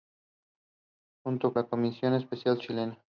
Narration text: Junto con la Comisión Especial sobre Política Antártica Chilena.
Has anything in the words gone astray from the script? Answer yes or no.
yes